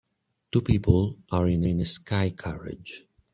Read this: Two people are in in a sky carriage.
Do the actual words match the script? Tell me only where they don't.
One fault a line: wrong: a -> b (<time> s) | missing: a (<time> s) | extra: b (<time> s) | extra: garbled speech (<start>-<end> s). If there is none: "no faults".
no faults